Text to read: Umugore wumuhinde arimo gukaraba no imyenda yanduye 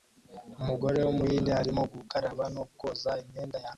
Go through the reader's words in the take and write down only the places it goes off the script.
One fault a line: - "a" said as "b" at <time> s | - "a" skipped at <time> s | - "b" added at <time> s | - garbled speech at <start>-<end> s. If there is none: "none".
- "koza" added at 2.8 s